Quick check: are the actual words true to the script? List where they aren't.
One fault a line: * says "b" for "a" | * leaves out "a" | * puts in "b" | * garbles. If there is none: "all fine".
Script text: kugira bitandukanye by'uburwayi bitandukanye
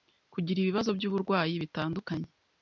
* says "ibibazo" for "bitandukanye"